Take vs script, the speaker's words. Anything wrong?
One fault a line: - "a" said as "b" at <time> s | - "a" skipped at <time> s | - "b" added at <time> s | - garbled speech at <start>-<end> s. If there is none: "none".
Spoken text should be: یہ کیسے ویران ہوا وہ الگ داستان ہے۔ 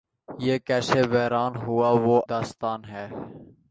- "الگ" skipped at 2.2 s